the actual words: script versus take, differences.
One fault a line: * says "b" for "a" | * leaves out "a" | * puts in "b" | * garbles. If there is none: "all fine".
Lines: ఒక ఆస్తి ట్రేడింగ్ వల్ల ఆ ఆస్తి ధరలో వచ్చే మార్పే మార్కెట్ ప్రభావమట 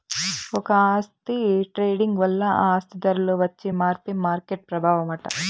all fine